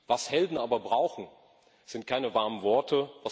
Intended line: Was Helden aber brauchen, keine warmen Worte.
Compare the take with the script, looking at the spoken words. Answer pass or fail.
fail